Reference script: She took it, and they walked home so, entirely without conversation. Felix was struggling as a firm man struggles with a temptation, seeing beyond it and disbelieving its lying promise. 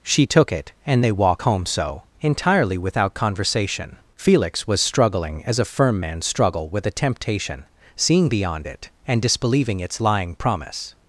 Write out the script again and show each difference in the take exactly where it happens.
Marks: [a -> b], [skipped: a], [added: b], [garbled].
She took it, and they [walked -> walk] home so, entirely without conversation. Felix was struggling as a firm man [struggles -> struggle] with a temptation, seeing beyond it and disbelieving its lying promise.